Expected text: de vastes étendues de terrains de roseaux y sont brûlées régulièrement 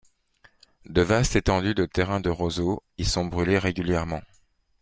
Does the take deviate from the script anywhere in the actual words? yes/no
no